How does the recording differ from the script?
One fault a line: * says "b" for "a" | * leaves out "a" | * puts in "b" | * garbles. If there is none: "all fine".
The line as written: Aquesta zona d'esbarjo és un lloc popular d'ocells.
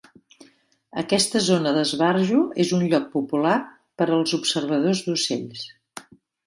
* puts in "per als observadors"